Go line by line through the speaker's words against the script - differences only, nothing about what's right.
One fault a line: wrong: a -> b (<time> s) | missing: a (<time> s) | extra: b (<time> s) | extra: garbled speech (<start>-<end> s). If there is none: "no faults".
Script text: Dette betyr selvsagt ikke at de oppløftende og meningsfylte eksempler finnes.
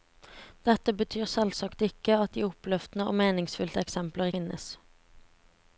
no faults